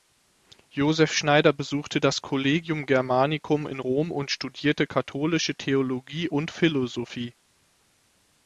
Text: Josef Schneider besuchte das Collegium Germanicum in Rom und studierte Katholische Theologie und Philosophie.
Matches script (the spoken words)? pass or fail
pass